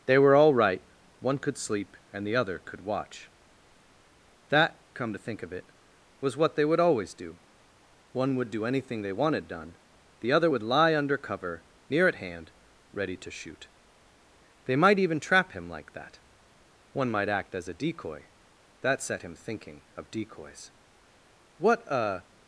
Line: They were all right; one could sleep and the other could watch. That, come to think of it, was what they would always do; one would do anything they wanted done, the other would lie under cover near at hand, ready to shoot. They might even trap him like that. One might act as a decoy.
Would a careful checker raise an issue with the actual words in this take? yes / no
yes